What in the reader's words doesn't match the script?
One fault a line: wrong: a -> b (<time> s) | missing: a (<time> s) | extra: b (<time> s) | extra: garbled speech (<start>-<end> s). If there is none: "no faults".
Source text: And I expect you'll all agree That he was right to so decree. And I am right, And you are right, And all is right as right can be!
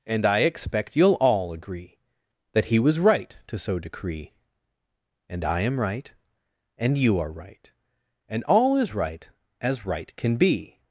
no faults